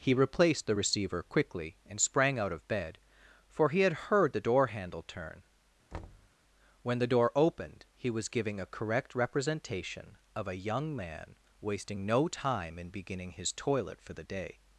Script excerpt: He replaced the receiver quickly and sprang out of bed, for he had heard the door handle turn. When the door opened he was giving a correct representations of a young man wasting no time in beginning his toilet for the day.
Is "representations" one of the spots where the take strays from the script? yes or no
yes